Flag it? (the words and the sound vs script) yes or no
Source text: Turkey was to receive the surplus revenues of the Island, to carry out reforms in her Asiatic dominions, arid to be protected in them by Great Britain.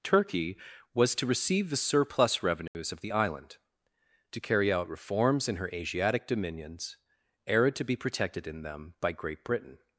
yes